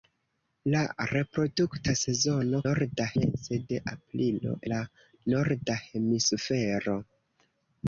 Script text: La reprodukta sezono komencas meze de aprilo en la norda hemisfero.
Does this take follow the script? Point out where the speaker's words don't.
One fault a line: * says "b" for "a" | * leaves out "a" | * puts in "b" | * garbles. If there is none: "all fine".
* says "norda" for "komencas"
* leaves out "en"